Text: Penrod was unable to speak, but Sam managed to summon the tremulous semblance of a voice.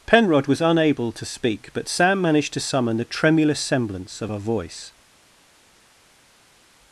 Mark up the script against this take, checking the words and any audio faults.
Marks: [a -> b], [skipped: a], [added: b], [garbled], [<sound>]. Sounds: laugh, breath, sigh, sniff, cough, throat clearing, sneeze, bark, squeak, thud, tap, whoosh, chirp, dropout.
Penrod was unable to speak, but Sam managed to summon the tremulous semblance of a voice.